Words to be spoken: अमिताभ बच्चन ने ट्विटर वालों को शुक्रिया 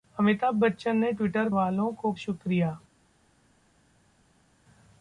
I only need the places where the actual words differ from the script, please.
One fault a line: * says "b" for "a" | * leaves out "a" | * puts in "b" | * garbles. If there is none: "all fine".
all fine